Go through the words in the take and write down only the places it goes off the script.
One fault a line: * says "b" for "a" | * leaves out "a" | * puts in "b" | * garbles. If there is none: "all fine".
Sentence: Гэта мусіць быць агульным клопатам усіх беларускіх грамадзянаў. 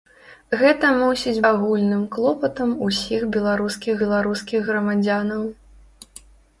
* leaves out "быць"
* puts in "беларускіх"